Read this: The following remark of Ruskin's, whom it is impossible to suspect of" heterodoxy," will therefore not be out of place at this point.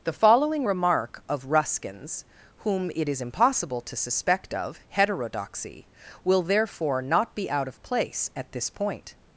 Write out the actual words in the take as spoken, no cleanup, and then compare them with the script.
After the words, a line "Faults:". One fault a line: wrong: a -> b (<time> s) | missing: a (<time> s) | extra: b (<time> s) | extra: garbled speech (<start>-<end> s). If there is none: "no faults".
The following remark of Ruskin's, whom it is impossible to suspect of" heterodoxy," will therefore not be out of place at this point.
Faults:
no faults